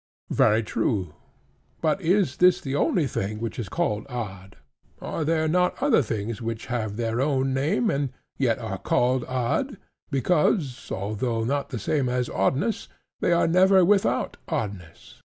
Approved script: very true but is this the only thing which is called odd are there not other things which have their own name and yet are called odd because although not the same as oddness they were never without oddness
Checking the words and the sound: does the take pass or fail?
fail